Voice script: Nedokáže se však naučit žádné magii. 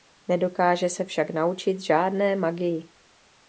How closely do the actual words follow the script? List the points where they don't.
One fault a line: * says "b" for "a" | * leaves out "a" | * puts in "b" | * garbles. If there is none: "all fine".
all fine